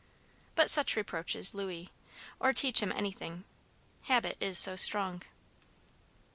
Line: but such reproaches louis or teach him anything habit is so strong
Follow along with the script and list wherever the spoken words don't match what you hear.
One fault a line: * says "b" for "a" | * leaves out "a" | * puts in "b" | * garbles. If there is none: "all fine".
all fine